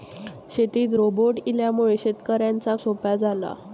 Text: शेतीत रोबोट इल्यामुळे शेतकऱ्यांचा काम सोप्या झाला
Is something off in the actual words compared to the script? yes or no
yes